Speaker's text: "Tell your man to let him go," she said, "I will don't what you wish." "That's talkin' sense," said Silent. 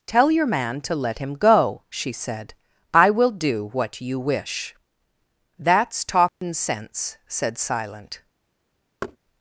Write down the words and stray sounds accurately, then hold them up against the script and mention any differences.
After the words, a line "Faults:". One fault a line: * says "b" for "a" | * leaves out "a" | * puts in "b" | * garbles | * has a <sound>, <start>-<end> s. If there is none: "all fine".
"Tell your man to let him go," she said, "I will do what you wish." "That's talkin' sense," said Silent.
Faults:
* says "do" for "don't"
* has a dropout, 6.3-6.4 s
* has a thud, 9.0-9.2 s